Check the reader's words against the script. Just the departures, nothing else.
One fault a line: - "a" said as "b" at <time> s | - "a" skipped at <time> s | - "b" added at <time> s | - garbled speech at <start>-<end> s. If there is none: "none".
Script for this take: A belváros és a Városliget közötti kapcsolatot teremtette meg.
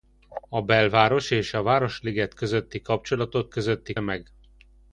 - "teremtette" said as "közötti" at 3.5 s